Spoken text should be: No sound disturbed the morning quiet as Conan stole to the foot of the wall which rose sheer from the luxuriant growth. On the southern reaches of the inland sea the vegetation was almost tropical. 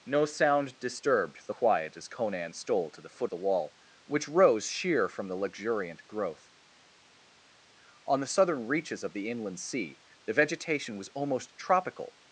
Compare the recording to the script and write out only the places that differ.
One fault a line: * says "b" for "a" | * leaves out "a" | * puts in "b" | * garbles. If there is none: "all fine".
* leaves out "morning"
* leaves out "of"